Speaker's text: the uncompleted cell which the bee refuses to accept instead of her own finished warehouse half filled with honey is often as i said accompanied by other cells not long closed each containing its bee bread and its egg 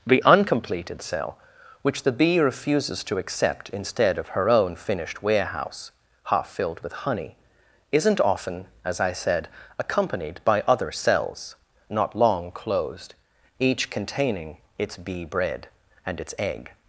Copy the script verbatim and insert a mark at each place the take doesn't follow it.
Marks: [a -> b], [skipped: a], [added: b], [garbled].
the uncompleted cell which the bee refuses to accept instead of her own finished warehouse half filled with honey [is -> isn't] often as i said accompanied by other cells not long closed each containing its bee bread and its egg